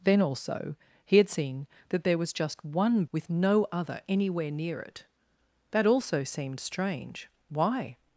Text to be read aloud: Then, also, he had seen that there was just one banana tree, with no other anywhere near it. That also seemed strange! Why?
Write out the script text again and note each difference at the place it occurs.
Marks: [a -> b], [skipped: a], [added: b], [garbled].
Then, also, he had seen that there was just one [skipped: banana tree,] with no other anywhere near it. That also seemed strange! Why?